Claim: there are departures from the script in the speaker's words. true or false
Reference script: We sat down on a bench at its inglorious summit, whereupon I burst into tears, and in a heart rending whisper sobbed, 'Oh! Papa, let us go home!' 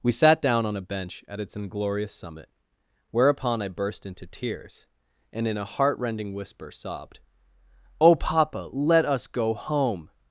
false